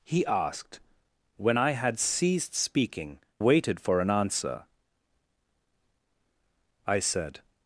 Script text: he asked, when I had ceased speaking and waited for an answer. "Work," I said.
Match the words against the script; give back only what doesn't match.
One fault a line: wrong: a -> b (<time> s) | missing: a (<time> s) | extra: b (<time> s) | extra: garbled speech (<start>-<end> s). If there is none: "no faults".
missing: and (3.2 s)
missing: Work (4.6 s)